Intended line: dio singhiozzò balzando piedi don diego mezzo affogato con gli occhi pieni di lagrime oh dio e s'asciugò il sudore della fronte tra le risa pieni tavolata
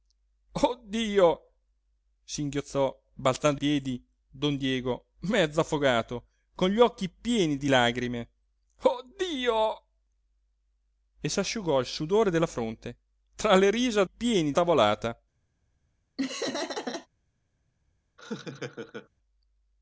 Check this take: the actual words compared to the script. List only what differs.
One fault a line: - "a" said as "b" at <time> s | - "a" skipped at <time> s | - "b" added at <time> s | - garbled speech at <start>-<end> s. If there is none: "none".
none